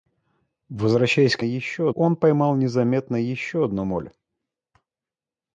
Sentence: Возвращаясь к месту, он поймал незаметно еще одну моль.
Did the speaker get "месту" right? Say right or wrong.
wrong